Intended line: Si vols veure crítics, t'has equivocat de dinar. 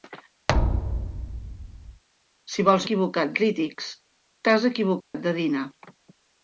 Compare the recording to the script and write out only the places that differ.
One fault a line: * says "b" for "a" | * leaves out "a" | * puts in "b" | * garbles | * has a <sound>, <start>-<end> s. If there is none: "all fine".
* has a thud, 0.5-2.0 s
* says "equivocat" for "veure"
* has a dropout, 5.0-5.1 s